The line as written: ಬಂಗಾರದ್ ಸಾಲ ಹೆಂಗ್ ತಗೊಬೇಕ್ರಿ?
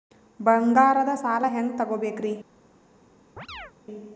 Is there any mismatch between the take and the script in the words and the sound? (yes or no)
yes